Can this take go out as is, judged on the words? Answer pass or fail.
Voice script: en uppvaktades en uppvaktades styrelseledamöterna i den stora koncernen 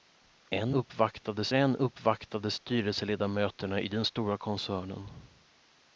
pass